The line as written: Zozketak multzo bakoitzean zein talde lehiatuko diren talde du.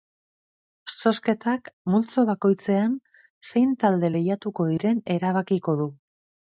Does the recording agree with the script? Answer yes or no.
no